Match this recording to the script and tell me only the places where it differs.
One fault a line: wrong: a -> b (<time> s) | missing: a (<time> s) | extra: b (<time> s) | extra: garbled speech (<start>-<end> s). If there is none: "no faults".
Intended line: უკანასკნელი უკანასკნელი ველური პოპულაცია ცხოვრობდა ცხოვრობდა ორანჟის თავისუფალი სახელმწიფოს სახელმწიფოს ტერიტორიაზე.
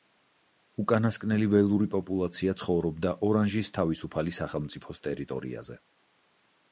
missing: უკანასკნელი (1.5 s)
missing: ცხოვრობდა (3.1 s)
missing: სახელმწიფოს (5.0 s)